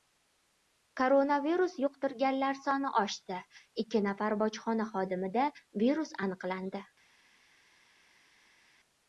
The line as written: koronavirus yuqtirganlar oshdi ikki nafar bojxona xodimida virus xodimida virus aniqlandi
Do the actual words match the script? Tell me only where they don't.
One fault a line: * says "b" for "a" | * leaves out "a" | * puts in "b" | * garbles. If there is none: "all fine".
* puts in "soni"
* leaves out "xodimida virus"